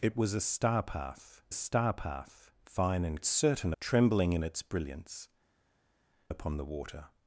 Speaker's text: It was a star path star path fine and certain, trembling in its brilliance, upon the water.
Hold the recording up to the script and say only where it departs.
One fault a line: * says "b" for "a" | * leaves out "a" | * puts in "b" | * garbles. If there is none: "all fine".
all fine